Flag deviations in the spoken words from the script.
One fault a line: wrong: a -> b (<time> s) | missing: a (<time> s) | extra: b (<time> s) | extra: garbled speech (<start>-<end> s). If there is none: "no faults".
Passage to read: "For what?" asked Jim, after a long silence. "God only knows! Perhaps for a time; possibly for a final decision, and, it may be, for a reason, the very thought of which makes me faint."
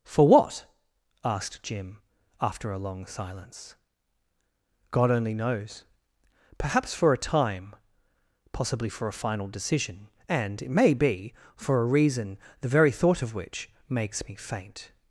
no faults